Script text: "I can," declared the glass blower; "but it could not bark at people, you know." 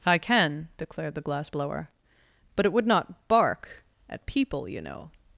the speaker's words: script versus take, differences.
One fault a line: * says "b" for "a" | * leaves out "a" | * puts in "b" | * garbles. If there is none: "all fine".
* says "would" for "could"